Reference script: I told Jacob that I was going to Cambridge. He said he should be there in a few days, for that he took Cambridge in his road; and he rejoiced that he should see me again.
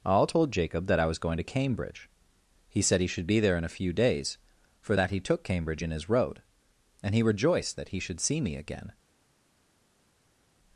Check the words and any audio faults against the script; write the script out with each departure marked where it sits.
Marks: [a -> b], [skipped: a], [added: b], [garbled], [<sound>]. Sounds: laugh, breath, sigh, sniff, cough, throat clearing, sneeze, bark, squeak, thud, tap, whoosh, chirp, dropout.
[I -> all] told Jacob that I was going to Cambridge. He said he should be there in a few days, for that he took Cambridge in his road; and he rejoiced that he should see me again.